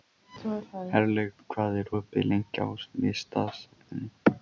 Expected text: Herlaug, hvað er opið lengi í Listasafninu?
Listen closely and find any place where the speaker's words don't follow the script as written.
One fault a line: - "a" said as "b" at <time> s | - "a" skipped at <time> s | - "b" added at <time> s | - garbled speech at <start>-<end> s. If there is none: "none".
none